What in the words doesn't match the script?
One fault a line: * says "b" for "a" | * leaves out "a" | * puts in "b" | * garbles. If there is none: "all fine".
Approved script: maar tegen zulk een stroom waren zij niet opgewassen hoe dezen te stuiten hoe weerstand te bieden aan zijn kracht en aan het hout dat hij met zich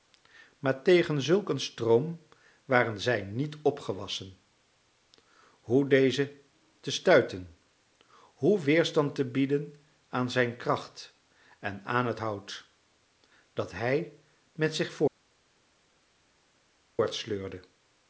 all fine